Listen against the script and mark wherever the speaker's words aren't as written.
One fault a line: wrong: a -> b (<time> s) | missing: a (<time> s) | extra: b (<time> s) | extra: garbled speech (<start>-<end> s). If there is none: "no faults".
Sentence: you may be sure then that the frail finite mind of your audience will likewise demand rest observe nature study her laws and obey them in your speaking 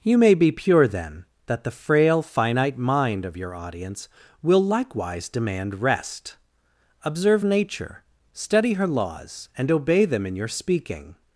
wrong: sure -> pure (0.5 s)